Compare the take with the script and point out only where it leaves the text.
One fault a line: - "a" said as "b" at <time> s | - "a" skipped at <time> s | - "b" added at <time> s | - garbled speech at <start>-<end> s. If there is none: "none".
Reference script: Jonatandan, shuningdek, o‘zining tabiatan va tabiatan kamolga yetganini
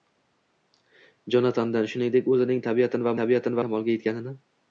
none